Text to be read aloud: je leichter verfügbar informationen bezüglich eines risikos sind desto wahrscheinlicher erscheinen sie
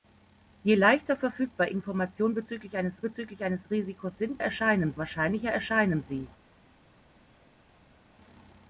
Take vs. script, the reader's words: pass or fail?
fail